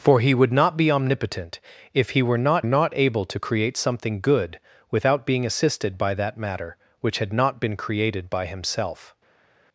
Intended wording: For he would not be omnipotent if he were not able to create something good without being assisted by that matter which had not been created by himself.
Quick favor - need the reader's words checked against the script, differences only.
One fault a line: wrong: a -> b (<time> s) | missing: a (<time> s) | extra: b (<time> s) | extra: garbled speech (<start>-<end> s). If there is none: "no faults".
extra: not (2.7 s)